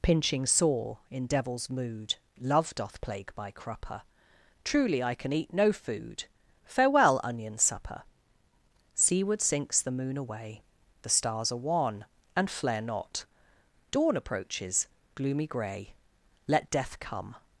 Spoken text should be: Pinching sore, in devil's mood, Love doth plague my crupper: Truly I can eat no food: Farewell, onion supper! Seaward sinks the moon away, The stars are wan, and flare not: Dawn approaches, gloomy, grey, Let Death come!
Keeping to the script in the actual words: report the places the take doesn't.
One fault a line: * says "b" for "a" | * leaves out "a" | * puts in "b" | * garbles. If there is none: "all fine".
all fine